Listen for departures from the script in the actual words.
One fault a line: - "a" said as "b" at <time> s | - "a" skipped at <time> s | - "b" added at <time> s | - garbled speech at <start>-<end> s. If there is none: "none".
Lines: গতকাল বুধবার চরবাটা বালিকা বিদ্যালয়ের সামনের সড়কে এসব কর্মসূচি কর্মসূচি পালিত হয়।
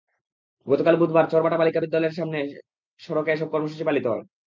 - "কর্মসূচি" skipped at 3.8 s